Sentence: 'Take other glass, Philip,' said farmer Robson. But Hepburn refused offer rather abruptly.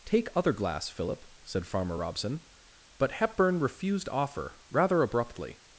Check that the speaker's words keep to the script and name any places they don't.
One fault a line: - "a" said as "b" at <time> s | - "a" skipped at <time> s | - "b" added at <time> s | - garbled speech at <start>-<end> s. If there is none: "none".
none